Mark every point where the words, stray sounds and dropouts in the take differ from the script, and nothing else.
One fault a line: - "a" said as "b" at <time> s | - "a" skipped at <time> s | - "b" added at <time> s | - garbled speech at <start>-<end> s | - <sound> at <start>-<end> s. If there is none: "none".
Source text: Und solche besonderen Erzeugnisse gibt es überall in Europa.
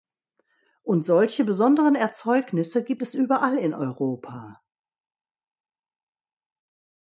none